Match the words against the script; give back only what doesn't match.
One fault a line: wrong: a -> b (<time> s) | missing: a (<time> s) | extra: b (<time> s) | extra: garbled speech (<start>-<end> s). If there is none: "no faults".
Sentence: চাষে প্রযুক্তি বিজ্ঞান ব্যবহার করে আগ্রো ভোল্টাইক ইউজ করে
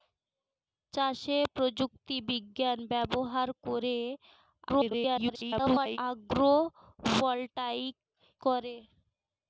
extra: garbled speech (4.7-6.0 s)
missing: ইউজ (8.0 s)